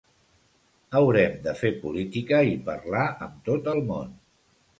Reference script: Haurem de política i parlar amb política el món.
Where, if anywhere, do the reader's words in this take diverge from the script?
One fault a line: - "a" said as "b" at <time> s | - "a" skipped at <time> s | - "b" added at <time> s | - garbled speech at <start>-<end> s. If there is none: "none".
- "fer" added at 1.6 s
- "política" said as "tot" at 3.5 s